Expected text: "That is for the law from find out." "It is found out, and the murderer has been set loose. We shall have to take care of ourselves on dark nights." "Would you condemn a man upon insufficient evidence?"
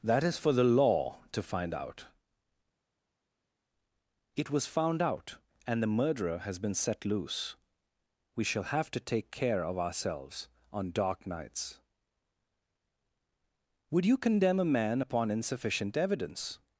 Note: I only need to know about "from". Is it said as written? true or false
false